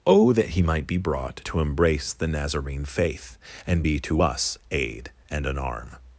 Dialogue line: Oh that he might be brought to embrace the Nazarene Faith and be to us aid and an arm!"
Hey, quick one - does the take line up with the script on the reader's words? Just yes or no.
yes